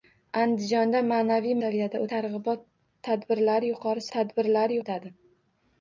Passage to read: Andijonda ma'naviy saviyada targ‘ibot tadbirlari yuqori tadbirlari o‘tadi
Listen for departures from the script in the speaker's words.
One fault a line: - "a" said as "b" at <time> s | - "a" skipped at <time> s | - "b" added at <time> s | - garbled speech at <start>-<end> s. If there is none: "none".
none